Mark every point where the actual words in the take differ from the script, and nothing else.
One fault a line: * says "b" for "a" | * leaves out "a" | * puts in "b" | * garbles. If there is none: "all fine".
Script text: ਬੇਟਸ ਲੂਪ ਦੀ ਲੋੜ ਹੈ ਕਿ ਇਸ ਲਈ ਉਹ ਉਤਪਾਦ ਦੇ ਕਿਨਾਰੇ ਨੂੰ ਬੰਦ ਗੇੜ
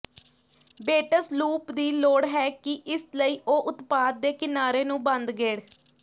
all fine